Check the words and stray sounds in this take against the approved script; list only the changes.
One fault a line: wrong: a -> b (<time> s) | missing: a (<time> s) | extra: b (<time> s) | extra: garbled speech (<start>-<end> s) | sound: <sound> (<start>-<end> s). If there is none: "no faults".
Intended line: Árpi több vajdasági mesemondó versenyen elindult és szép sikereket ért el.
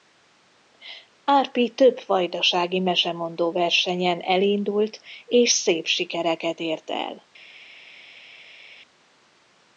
no faults